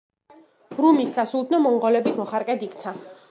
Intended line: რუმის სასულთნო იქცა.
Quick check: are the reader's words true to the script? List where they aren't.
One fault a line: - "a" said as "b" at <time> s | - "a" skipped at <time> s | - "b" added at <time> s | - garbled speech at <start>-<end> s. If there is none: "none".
- "მონღოლების მოხარკედ" added at 1.7 s